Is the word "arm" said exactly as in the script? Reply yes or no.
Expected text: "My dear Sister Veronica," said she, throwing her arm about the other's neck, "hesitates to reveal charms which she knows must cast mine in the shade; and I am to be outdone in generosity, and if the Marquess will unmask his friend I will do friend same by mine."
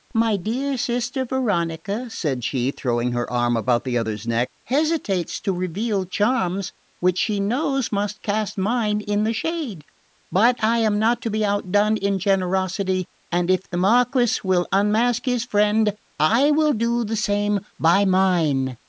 yes